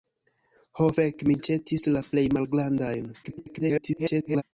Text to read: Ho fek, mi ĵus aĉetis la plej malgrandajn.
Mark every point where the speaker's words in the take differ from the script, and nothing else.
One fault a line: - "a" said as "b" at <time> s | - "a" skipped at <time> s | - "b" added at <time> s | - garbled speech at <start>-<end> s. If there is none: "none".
- "ĵus" skipped at 1.4 s
- garbled speech at 3.2-4.4 s